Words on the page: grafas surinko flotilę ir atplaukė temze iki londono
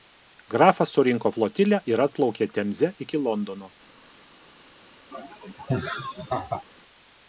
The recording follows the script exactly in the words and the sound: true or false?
false